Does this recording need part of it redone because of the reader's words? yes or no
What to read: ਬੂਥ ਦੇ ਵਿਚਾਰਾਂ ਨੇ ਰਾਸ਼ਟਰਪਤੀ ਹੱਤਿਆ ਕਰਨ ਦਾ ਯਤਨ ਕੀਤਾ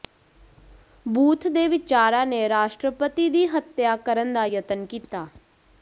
yes